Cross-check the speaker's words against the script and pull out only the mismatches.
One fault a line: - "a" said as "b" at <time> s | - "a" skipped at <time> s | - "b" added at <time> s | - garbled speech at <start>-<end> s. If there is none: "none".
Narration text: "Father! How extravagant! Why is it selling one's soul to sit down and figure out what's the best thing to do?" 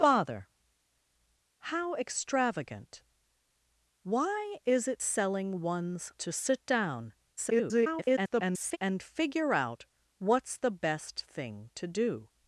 - "soul" skipped at 6.1 s
- garbled speech at 7.4-8.8 s